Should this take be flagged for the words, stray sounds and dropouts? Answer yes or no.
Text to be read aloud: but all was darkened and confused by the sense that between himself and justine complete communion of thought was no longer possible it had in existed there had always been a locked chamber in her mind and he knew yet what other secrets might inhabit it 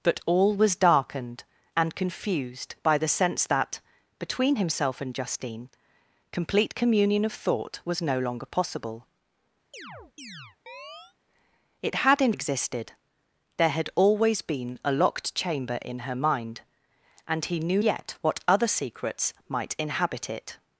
yes